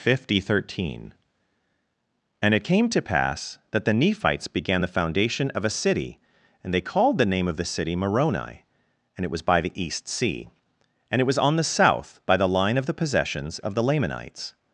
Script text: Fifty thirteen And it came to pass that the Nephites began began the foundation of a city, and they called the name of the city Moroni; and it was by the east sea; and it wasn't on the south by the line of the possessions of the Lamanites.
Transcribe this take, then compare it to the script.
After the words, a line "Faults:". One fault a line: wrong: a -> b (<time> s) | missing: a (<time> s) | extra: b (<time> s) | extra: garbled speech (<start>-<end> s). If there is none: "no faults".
Fifty thirteen And it came to pass that the Nephites began the foundation of a city, and they called the name of the city Moroni; and it was by the east sea; and it was on the south by the line of the possessions of the Lamanites.
Faults:
missing: began (4.8 s)
wrong: wasn't -> was (11.3 s)